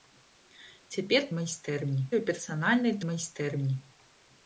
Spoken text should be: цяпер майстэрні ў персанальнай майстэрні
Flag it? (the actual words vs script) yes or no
no